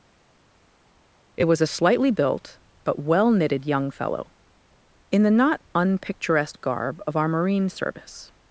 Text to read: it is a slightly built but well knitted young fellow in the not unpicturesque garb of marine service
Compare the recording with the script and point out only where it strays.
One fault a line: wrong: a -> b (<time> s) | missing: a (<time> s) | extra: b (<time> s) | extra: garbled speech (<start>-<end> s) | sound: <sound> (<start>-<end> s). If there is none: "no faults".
wrong: is -> was (1.5 s)
extra: our (7.2 s)